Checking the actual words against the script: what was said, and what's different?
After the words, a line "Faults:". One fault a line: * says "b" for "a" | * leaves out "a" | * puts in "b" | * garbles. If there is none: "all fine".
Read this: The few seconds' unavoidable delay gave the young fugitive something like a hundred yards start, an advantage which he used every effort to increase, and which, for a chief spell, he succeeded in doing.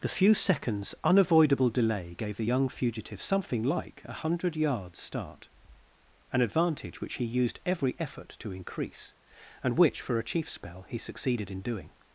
The few seconds' unavoidable delay gave the young fugitive something like a hundred yards start, an advantage which he used every effort to increase, and which, for a chief spell, he succeeded in doing.
Faults:
all fine